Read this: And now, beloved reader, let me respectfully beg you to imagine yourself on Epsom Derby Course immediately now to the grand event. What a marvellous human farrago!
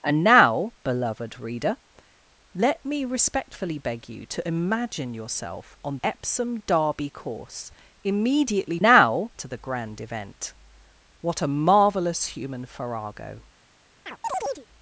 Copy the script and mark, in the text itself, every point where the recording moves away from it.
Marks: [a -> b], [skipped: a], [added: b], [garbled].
And now, beloved reader, let me respectfully beg you to imagine yourself on Epsom Derby Course immediately now to the grand event. What a marvellous human farrago!